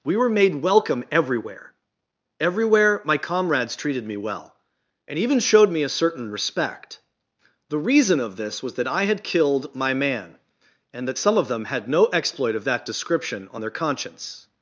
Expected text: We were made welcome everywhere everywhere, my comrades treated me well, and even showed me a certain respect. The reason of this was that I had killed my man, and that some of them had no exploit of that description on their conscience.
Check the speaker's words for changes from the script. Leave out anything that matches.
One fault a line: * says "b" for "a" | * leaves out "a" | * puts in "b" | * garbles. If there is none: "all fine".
all fine